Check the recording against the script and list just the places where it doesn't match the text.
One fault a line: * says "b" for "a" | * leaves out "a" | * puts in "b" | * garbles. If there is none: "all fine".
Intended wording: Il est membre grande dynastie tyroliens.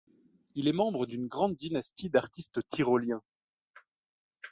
* puts in "d'une"
* puts in "d'artistes"